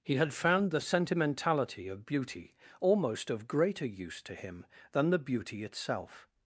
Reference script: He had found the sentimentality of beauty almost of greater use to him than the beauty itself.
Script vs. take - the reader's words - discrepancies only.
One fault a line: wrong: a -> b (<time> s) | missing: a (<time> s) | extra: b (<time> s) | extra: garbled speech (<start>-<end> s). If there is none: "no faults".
no faults